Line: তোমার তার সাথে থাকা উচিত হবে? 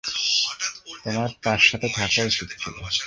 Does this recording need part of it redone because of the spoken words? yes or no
yes